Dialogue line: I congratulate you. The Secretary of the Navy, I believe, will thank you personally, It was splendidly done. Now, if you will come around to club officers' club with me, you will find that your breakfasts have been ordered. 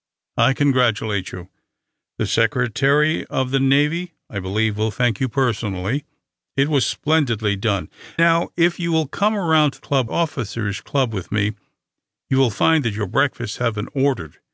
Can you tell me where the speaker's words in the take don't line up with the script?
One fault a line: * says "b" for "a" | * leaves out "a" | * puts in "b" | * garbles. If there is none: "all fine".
all fine